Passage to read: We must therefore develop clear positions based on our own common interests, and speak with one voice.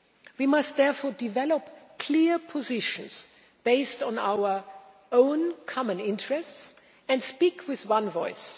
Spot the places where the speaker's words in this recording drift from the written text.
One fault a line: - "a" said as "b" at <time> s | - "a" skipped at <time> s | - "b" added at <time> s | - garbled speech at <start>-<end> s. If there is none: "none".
none